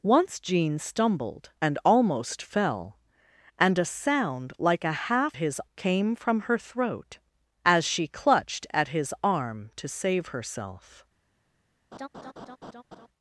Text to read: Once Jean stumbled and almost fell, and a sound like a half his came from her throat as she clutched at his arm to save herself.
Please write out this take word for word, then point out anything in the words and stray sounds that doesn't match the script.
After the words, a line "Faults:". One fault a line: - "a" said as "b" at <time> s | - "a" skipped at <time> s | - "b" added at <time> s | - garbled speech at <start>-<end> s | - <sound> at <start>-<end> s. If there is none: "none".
Once Jean stumbled and almost fell, and a sound like a half his came from her throat as she clutched at his arm to save herself.
Faults:
- laugh at 11.9-13.1 s